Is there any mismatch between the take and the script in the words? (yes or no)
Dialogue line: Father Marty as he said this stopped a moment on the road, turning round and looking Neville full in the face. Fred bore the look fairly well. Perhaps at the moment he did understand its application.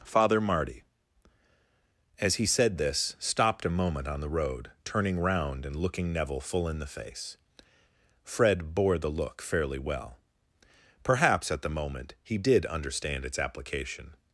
no